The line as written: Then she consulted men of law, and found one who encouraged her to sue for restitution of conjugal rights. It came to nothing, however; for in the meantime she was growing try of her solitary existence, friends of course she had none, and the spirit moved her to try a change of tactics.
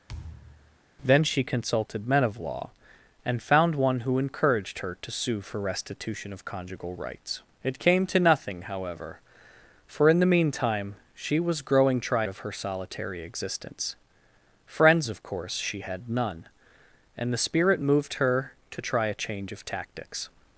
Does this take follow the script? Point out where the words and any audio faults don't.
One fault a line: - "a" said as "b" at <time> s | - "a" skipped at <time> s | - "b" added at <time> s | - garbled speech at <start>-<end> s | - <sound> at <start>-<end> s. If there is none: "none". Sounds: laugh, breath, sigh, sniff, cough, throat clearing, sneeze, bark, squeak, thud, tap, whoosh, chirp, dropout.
- thud at 0.1-0.8 s